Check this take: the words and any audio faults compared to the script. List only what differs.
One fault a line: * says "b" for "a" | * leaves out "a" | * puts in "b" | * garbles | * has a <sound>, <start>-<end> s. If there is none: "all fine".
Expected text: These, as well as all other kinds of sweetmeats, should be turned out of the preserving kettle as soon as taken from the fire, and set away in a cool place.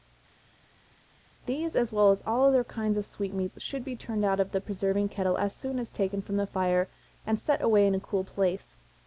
all fine